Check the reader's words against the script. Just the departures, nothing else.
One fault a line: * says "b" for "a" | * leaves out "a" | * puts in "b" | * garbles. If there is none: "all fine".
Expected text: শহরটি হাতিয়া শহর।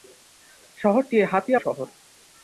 all fine